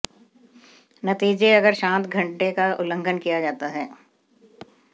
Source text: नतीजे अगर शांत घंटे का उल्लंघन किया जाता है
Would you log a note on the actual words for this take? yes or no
no